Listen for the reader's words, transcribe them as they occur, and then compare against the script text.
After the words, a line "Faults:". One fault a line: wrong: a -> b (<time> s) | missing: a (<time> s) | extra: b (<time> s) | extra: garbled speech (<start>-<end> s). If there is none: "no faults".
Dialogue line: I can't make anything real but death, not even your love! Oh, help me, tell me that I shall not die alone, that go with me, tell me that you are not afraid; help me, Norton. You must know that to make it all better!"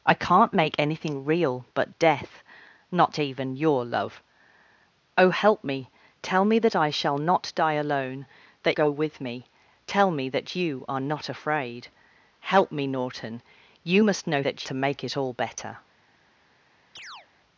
I can't make anything real but death, not even your love! Oh, help me, tell me that I shall not die alone, that go with me, tell me that you are not afraid; help me, Norton. You must know that to make it all better!"
Faults:
no faults